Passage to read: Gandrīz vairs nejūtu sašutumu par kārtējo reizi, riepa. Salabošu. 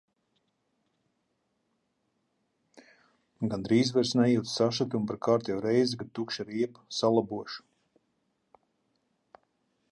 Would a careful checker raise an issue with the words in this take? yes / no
yes